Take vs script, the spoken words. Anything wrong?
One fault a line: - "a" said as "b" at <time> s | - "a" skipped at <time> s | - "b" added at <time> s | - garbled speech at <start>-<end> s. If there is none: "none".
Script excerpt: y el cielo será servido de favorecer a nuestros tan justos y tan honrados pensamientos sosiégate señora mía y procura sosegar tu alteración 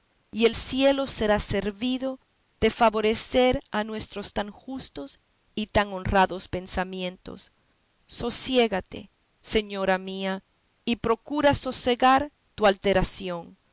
none